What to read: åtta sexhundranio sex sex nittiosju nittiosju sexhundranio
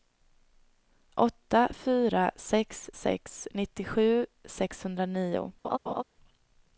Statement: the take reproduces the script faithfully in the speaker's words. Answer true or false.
false